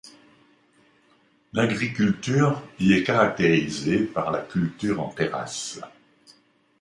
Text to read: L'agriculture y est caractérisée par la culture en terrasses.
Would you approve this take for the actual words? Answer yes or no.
yes